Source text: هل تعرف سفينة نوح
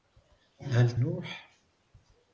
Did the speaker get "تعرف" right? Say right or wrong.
wrong